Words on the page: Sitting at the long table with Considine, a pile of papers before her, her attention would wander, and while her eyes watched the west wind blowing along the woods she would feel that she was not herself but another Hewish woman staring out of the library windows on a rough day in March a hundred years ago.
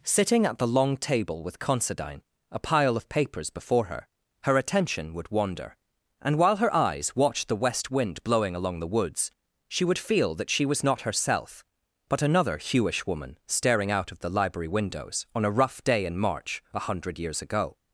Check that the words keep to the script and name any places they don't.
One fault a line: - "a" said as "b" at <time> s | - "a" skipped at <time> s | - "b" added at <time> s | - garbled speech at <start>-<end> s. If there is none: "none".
none